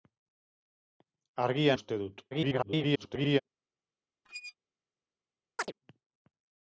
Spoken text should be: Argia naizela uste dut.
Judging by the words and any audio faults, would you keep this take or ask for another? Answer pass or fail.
fail